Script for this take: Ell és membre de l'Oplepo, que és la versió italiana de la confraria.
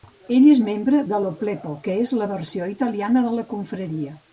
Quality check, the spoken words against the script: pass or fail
pass